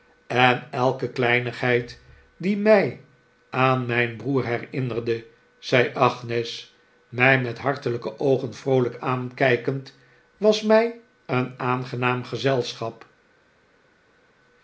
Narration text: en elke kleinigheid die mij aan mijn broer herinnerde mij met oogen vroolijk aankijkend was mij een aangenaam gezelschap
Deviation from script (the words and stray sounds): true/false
true